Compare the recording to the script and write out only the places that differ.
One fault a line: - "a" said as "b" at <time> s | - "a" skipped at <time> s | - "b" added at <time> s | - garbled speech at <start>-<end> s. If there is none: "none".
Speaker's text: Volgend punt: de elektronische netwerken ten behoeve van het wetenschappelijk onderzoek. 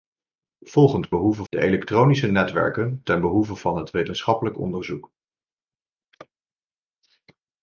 - "punt" said as "behoeve" at 1.1 s